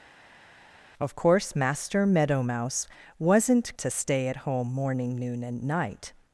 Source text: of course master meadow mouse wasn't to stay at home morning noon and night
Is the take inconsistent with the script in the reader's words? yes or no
no